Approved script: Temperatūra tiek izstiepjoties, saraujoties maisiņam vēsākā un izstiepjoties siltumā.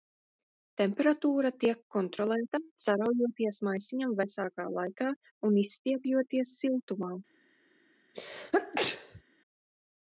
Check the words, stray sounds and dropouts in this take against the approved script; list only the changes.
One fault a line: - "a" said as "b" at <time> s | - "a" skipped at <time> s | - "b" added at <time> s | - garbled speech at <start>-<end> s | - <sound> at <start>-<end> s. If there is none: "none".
- "izstiepjoties" said as "kontrolēta" at 2.0 s
- "laikā" added at 4.8 s
- sneeze at 8.1-9.2 s